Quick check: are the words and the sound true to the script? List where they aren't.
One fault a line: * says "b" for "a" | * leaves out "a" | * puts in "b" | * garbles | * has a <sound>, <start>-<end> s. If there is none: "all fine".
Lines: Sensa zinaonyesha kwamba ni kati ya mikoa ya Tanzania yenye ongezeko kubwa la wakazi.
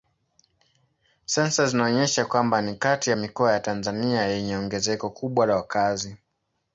all fine